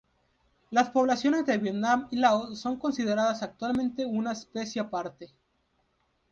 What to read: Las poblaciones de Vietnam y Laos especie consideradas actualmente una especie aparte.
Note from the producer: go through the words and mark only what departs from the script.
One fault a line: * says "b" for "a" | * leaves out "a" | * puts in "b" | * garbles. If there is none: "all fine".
* says "son" for "especie"